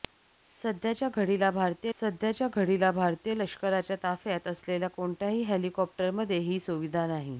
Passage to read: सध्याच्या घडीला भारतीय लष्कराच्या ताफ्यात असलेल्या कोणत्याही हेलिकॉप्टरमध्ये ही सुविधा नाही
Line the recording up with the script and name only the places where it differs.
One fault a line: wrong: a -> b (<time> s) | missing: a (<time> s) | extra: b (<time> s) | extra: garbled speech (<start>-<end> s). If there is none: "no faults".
extra: सध्याच्या घडीला भारतीय (2.0 s)